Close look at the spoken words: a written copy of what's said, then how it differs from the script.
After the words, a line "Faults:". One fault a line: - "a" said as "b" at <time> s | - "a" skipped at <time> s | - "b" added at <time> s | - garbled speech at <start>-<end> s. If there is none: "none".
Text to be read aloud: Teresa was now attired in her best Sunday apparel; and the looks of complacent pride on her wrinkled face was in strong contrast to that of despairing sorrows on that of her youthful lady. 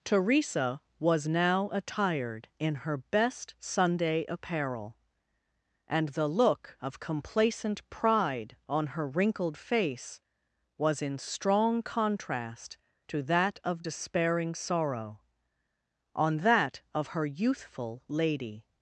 Teresa was now attired in her best Sunday apparel; and the look of complacent pride on her wrinkled face was in strong contrast to that of despairing sorrow on that of her youthful lady.
Faults:
- "looks" said as "look" at 6.3 s
- "sorrows" said as "sorrow" at 14.5 s